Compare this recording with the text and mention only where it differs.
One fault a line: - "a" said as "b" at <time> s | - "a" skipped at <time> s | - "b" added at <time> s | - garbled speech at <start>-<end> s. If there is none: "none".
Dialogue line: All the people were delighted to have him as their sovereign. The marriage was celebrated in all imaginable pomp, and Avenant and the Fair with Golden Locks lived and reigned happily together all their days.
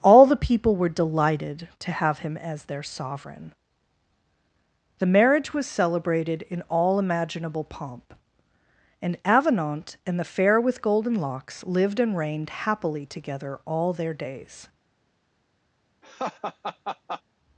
none